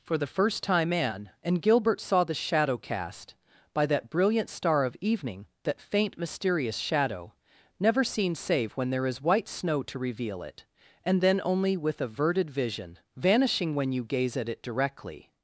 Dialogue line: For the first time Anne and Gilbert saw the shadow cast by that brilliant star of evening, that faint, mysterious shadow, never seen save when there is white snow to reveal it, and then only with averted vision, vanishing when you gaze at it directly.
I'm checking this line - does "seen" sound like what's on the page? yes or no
yes